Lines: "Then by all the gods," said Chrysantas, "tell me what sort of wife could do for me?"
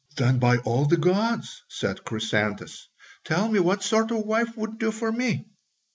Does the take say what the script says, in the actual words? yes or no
no